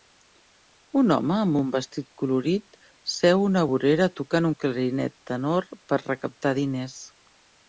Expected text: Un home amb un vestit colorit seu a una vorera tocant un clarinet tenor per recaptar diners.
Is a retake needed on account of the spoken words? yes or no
no